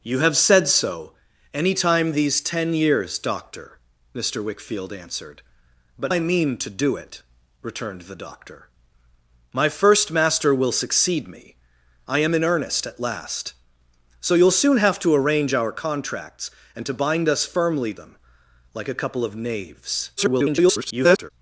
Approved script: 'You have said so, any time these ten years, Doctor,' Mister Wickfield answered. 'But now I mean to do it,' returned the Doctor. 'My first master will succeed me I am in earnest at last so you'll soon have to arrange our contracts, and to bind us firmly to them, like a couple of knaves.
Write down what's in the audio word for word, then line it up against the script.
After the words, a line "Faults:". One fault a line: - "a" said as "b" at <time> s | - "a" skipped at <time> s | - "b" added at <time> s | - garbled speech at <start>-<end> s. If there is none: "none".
'You have said so, any time these ten years, Doctor,' Mister Wickfield answered. 'But I mean to do it,' returned the Doctor. 'My first master will succeed me I am in earnest at last so you'll soon have to arrange our contracts, and to bind us firmly them, like a couple of knaves. [garbled]
Faults:
- "now" skipped at 6.1 s
- "to" skipped at 17.9 s
- garbled speech at 20.2-21.3 s